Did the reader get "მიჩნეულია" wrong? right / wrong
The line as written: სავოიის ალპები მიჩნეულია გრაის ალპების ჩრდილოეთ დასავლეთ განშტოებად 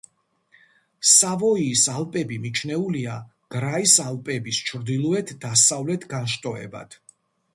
right